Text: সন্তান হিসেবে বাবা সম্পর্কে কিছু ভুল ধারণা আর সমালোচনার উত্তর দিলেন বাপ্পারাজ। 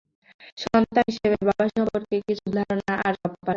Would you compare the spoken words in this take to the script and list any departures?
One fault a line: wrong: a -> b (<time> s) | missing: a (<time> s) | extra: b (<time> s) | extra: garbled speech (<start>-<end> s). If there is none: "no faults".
missing: ভুল (2.4 s)
missing: সমালোচনার উত্তর দিলেন (3.1 s)